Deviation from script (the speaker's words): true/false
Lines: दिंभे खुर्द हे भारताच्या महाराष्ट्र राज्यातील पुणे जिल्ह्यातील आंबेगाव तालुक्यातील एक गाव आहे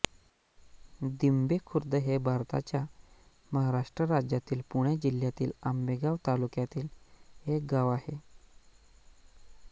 false